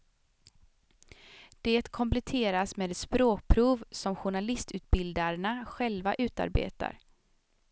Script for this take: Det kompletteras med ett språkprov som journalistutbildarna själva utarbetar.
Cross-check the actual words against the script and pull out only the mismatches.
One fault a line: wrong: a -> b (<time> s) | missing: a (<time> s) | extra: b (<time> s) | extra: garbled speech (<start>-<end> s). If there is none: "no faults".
no faults